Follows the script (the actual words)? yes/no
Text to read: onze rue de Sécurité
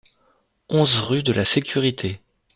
no